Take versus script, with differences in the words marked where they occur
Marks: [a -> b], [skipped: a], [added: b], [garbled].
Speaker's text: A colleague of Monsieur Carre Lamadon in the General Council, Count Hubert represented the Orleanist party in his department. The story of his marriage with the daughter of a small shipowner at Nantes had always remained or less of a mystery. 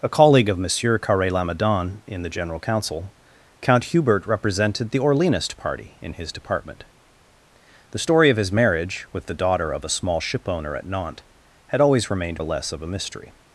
A colleague of Monsieur Carre Lamadon in the General Council, Count Hubert represented the Orleanist party in his department. The story of his marriage with the daughter of a small shipowner at Nantes had always remained or less of a mystery.